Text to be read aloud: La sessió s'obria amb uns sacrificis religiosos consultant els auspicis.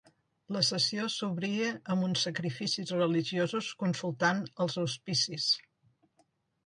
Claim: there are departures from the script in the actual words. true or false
false